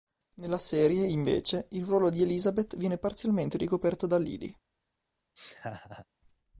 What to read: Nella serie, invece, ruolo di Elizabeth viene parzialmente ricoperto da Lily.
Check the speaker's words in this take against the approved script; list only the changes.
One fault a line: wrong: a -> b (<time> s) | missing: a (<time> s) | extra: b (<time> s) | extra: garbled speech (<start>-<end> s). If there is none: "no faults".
extra: il (1.7 s)